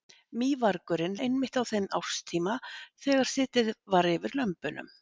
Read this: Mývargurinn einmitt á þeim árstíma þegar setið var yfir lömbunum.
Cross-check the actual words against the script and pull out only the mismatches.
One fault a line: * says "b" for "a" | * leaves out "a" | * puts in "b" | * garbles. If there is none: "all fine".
all fine